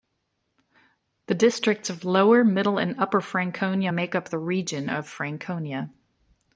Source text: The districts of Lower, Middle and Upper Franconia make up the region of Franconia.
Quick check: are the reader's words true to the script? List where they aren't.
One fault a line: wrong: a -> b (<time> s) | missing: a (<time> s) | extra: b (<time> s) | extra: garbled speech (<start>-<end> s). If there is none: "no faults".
no faults